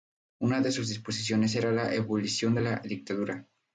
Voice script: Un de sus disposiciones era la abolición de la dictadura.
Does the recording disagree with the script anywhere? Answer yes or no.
yes